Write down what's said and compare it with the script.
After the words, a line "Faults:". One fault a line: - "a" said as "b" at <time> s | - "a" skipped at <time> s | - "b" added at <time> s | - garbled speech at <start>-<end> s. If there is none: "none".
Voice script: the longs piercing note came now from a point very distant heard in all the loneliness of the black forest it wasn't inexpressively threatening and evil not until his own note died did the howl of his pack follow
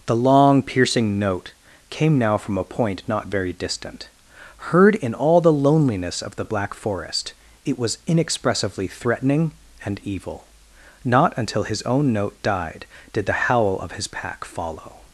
the long piercing note came now from a point not very distant heard in all the loneliness of the black forest it was inexpressively threatening and evil not until his own note died did the howl of his pack follow
Faults:
- "longs" said as "long" at 0.1 s
- "not" added at 3.1 s
- "wasn't" said as "was" at 7.8 s